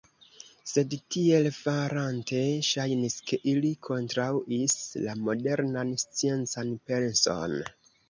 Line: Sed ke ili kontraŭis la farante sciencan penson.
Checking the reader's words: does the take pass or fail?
fail